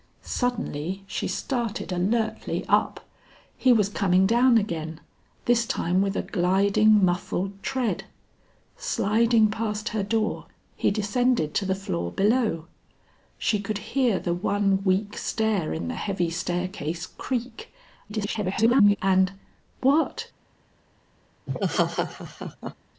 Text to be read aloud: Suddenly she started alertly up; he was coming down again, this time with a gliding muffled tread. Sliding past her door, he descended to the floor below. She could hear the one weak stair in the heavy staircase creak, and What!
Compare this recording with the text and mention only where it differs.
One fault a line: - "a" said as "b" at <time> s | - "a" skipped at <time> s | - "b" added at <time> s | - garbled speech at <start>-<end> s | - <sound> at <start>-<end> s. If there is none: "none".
- garbled speech at 18.1-19.0 s
- laugh at 21.5-22.7 s